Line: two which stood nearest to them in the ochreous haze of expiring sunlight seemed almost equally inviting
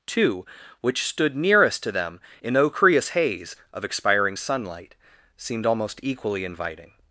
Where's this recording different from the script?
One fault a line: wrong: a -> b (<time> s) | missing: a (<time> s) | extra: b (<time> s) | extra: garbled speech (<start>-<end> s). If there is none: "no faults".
missing: the (2.6 s)